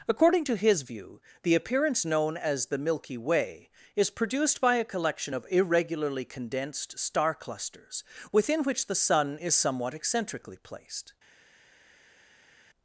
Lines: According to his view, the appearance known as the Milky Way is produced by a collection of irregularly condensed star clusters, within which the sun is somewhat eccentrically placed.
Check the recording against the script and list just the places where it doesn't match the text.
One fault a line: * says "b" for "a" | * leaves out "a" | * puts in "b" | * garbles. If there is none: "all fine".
all fine